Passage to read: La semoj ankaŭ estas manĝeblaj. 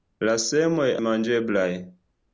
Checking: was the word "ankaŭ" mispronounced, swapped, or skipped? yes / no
yes